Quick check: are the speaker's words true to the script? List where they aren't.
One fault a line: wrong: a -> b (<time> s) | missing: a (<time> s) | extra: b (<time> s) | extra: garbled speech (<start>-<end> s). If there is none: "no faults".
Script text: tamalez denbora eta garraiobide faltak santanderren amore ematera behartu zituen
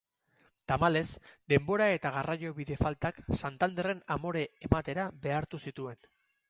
no faults